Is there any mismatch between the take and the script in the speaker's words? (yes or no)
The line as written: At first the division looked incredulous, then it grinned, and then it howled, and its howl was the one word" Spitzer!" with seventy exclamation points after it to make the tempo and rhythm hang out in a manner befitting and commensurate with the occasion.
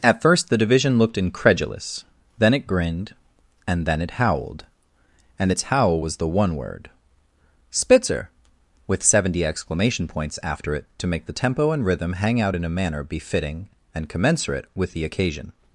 no